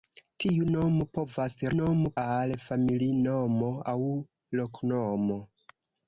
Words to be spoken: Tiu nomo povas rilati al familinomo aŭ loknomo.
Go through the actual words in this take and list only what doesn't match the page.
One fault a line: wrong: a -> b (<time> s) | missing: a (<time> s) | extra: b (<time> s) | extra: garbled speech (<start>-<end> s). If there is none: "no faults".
wrong: rilati -> nomo (1.8 s)